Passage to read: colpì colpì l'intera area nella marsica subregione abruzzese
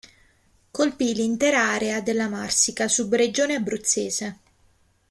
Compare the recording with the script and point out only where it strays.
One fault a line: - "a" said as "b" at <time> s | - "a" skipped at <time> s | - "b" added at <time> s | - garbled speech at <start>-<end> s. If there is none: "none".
- "colpì" skipped at 1.1 s
- "nella" said as "della" at 2.0 s